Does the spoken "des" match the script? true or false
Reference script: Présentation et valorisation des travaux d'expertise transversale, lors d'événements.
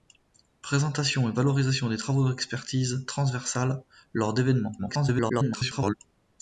true